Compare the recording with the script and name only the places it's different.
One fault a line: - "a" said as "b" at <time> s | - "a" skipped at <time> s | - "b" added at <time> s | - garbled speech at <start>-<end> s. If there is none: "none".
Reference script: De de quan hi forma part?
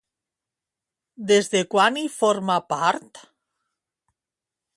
- "De" said as "Des" at 1.3 s